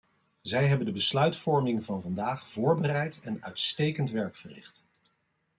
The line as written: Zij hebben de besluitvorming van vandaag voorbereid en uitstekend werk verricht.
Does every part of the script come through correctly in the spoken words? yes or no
yes